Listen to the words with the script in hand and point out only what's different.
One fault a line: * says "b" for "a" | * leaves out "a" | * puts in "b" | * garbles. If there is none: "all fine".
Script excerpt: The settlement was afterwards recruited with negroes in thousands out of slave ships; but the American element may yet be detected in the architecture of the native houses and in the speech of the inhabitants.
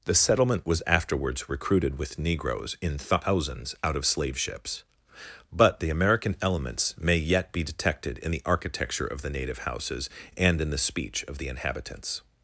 * says "elements" for "element"